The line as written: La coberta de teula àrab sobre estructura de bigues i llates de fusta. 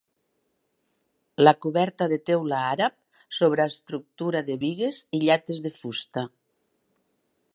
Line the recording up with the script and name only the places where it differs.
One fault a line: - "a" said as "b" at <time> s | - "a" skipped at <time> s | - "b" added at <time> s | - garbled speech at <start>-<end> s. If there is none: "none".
none